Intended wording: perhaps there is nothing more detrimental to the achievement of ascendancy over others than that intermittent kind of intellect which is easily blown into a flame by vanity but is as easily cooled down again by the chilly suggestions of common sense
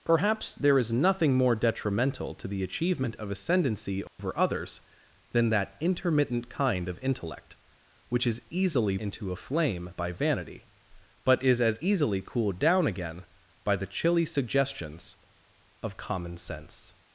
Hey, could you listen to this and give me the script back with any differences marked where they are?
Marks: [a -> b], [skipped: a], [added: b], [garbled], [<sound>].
perhaps there is nothing more detrimental to the achievement of ascendancy over [dropout] others than that intermittent kind of intellect which is easily [skipped: blown] into a flame by vanity but is as easily cooled down again by the chilly suggestions of common sense